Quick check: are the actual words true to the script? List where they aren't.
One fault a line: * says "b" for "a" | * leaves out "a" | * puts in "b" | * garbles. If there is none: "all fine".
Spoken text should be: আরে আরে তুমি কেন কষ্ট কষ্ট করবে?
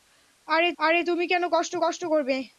all fine